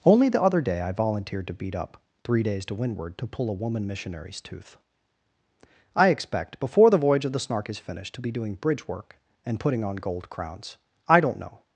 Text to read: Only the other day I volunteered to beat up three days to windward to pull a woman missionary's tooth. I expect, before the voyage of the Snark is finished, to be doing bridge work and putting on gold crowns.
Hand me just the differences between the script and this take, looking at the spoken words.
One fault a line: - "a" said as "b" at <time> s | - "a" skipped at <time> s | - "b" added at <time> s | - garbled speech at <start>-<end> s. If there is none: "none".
- "I don't know" added at 11.1 s